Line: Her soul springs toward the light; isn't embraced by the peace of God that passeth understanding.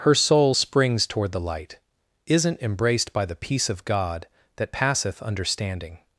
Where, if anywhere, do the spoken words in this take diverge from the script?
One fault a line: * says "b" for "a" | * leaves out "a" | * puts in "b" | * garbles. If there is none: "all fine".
all fine